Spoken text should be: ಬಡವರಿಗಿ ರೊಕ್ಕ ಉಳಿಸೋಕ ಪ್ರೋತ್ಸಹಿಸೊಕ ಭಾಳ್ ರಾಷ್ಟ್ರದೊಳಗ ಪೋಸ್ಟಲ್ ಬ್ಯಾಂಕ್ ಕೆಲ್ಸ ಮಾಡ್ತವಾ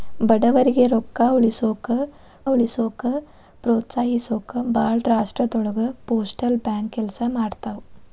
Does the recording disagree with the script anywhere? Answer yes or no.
yes